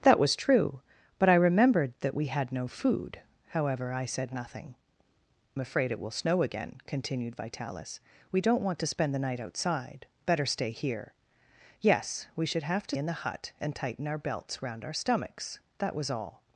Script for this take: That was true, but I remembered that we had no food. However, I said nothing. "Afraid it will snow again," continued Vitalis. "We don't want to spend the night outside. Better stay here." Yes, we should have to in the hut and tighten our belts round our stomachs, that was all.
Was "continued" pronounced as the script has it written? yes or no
yes